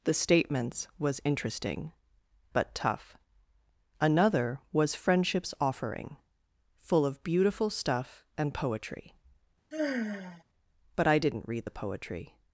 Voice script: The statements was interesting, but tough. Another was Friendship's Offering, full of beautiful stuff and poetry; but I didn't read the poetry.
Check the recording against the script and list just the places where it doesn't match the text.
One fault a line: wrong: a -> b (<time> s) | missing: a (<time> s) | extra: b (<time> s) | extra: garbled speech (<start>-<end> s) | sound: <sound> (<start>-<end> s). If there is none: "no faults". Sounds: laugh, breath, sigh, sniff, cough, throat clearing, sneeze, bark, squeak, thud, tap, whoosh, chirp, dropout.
sound: sigh (9.7-10.4 s)